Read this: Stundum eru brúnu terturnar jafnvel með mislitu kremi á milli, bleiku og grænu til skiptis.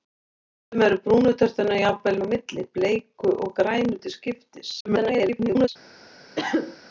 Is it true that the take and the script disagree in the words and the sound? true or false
true